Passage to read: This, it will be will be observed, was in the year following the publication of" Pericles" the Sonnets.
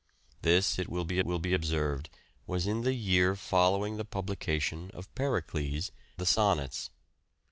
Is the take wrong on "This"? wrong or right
right